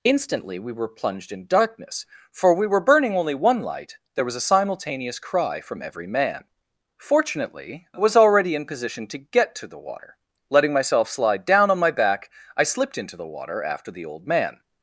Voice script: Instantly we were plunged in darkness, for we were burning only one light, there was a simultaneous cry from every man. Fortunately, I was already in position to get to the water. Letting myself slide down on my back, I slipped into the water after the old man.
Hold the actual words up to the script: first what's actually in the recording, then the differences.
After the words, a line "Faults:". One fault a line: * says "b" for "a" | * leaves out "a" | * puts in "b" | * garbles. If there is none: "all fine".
Instantly we were plunged in darkness, for we were burning only one light, there was a simultaneous cry from every man. Fortunately, I was already in position to get to the water. Letting myself slide down on my back, I slipped into the water after the old man.
Faults:
all fine